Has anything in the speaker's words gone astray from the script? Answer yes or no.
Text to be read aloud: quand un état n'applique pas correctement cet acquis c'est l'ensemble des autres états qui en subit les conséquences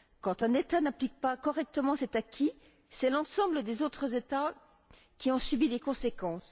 no